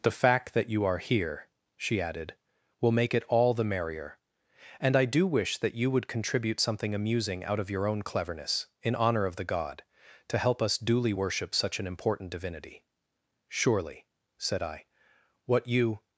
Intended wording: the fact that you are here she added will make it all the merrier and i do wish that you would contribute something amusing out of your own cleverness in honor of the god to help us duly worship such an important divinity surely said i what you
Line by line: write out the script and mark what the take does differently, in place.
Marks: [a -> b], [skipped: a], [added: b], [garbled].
the fact that you are here she added will make it all the merrier and i do wish that you would contribute something amusing out of your own cleverness in honor of the god to help us duly worship such an important divinity surely said i what you